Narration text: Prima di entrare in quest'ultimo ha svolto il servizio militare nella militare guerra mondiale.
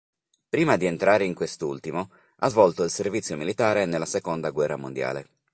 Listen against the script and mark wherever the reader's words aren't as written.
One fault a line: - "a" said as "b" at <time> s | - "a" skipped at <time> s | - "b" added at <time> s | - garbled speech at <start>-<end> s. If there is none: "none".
- "militare" said as "seconda" at 4.0 s